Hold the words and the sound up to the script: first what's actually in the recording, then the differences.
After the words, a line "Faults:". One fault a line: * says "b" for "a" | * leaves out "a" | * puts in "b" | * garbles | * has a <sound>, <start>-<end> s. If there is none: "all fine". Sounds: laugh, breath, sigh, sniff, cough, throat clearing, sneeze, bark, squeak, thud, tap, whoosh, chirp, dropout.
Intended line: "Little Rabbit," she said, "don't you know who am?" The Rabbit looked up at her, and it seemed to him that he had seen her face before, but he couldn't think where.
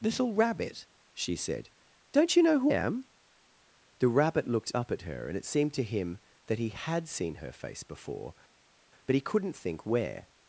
"Little Rabbit," she said, "don't you know who am?" The Rabbit looked up at her, and it seemed to him that he had seen her face before, but he couldn't think where.
Faults:
all fine